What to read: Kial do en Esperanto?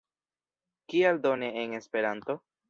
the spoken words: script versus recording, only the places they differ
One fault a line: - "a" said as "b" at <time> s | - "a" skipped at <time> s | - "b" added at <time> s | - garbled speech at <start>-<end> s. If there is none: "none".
- "ne" added at 1.4 s